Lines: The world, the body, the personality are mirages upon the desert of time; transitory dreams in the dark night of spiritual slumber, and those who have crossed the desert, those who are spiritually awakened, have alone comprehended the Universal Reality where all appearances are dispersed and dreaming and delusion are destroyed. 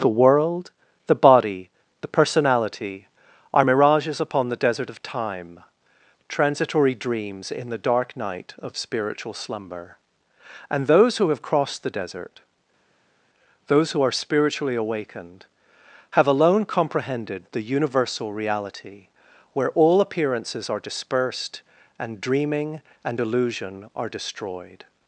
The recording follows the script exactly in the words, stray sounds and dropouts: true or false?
true